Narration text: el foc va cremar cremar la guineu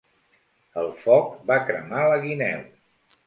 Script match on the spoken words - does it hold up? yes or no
no